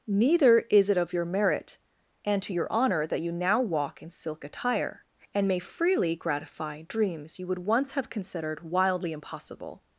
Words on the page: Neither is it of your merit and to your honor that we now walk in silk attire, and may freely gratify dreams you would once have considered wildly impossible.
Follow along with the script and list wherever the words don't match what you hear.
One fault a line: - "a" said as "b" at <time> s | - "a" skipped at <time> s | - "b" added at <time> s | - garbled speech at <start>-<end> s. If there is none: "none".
- "we" said as "you" at 3.2 s